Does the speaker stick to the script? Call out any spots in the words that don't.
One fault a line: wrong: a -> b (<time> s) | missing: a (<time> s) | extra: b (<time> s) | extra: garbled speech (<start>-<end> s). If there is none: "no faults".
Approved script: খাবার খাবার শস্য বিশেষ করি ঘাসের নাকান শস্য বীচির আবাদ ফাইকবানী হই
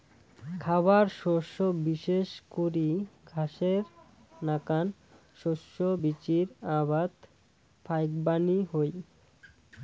missing: খাবার (1.1 s)